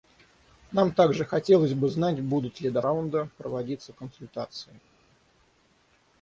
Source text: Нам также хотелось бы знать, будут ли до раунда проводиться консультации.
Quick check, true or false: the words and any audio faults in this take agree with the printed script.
true